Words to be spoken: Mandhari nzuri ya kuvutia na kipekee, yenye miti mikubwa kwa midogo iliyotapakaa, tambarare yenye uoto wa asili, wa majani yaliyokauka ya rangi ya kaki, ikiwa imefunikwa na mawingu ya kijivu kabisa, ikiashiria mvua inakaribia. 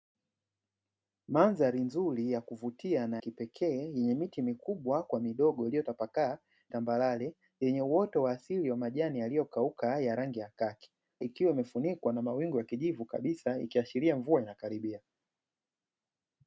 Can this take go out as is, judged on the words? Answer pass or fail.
pass